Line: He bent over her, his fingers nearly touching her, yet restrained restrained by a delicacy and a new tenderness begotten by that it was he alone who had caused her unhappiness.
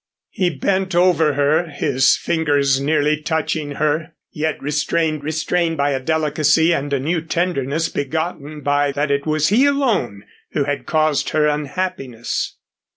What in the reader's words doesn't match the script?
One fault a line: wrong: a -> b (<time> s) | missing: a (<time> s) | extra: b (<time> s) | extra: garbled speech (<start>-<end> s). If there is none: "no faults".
no faults